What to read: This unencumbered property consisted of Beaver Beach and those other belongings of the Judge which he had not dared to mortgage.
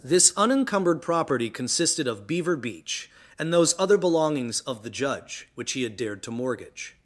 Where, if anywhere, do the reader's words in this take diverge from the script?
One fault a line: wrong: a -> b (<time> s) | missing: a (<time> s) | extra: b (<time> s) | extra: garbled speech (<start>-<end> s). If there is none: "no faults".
missing: not (6.0 s)